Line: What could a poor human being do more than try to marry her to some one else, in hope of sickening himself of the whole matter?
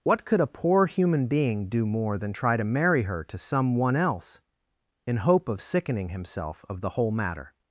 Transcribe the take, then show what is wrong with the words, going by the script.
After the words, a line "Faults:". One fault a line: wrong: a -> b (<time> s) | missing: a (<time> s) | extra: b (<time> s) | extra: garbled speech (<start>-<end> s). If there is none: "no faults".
What could a poor human being do more than try to marry her to some one else, in hope of sickening himself of the whole matter?
Faults:
no faults